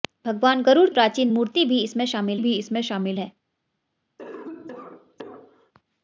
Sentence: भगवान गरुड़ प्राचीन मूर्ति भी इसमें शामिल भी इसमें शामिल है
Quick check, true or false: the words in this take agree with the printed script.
true